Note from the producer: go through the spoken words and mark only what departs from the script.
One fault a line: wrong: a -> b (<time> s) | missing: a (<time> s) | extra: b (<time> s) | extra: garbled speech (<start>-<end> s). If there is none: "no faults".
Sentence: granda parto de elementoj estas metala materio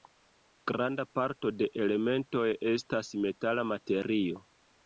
no faults